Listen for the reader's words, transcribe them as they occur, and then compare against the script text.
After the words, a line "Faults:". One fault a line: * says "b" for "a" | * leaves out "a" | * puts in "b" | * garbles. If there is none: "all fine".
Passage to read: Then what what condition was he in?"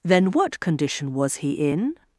Then what condition was he in?"
Faults:
* leaves out "what"